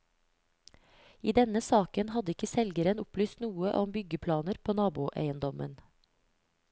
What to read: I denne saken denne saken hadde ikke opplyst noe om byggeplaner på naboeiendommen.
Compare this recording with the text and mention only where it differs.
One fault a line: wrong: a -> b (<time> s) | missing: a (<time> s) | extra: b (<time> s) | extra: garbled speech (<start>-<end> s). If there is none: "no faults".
missing: denne saken (2.1 s)
extra: selgeren (2.5 s)